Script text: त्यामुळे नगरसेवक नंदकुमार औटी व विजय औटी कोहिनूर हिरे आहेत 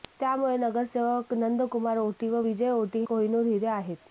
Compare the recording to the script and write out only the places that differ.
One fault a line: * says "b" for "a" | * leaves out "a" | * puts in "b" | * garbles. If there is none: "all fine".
all fine